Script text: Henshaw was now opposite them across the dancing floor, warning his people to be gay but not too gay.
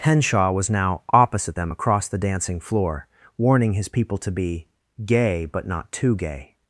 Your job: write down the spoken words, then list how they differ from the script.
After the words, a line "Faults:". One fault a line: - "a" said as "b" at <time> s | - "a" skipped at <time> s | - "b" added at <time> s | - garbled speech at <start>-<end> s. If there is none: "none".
Henshaw was now opposite them across the dancing floor, warning his people to be gay but not too gay.
Faults:
none